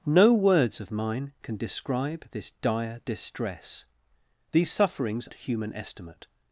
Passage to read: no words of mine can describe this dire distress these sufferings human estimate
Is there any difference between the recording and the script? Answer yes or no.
no